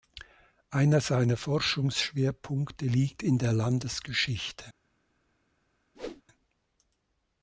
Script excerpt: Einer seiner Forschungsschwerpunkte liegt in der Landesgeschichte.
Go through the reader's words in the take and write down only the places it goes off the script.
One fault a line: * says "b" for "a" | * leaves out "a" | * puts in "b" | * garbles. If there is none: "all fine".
all fine